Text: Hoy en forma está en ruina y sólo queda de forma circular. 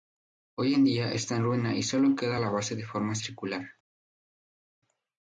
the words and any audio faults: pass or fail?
fail